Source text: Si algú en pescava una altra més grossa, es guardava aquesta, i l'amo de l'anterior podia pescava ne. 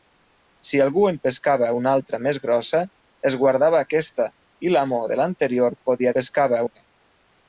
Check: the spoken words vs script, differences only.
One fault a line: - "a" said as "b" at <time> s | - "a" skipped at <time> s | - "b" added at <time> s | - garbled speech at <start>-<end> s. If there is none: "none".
none